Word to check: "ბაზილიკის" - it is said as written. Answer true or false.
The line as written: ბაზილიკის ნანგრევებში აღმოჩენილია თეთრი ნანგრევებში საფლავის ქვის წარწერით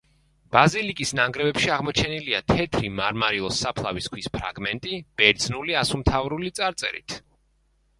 true